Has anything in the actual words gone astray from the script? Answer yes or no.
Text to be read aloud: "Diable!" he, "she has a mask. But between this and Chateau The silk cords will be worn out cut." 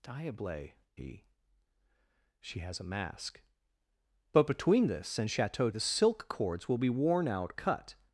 no